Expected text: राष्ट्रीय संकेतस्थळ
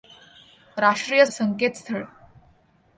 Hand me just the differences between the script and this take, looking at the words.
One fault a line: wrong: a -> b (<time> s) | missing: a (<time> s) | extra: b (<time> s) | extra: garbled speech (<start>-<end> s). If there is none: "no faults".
no faults